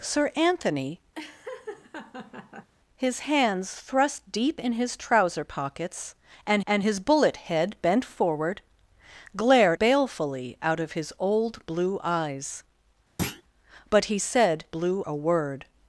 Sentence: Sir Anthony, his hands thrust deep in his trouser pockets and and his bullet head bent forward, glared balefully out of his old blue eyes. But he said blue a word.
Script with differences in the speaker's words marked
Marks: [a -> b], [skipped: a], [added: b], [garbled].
Sir Anthony, his hands thrust deep in his trouser pockets and and his bullet head bent forward, glared balefully out of his old blue eyes. But he said blue a word.